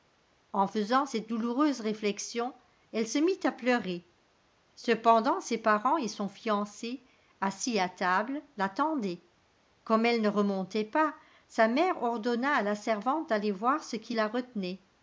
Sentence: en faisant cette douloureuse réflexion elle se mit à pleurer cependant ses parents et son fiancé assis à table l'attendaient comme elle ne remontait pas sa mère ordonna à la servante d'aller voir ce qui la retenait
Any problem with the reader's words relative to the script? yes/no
no